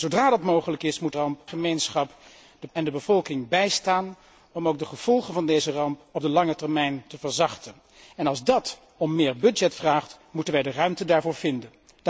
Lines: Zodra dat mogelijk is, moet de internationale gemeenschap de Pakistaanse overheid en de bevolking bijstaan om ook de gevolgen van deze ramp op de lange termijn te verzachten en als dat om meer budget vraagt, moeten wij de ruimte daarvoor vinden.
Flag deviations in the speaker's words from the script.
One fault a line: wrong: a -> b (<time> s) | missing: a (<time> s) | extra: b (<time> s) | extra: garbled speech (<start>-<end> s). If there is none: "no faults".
wrong: internationale -> ramp (1.1 s)
missing: Pakistaanse overheid (2.7 s)